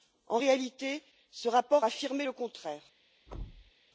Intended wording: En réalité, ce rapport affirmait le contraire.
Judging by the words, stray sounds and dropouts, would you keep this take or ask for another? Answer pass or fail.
fail